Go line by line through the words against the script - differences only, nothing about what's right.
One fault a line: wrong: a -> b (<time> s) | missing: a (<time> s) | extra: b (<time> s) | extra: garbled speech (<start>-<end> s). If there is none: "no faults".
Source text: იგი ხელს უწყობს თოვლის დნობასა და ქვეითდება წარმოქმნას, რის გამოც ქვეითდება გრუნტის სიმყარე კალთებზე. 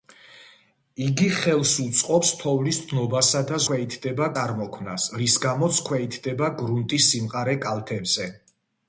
no faults